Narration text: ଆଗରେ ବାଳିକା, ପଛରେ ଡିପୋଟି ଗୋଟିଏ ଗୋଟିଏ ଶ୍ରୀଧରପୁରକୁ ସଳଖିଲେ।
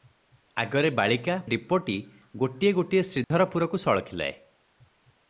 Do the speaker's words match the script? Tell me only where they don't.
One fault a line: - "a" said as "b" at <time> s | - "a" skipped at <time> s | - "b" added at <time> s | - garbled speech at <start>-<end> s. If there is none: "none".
- "ପଛରେ" skipped at 1.4 s